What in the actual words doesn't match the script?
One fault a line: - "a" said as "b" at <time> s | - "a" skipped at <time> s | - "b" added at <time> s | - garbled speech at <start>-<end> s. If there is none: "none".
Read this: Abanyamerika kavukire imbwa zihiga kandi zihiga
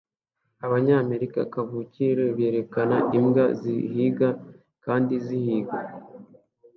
- "berekana" added at 2.4 s